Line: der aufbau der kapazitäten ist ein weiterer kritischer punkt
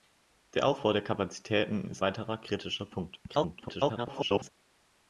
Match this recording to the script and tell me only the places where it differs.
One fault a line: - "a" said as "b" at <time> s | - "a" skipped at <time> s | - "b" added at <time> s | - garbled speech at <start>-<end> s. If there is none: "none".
- "ein" skipped at 2.0 s
- garbled speech at 3.3-4.5 s